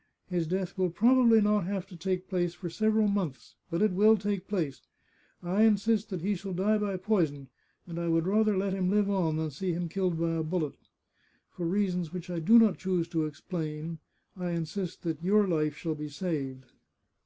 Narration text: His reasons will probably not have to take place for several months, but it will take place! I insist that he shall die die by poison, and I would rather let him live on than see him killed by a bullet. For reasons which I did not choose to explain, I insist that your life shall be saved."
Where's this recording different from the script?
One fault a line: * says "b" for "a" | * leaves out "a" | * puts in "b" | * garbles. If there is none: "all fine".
* says "death" for "reasons"
* leaves out "die"
* says "do" for "did"